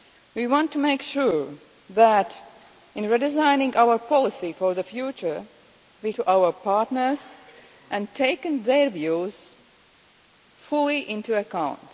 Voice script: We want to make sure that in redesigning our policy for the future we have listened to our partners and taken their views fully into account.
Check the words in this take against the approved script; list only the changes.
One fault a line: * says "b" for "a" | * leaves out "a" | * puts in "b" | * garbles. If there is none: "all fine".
* leaves out "have listened"